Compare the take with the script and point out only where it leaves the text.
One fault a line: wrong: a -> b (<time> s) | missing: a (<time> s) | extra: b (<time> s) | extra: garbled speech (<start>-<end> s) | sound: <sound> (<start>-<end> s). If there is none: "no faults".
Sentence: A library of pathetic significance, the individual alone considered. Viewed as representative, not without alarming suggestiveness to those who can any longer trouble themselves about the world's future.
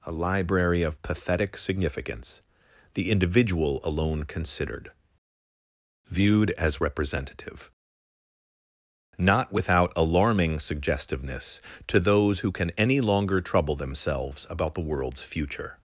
no faults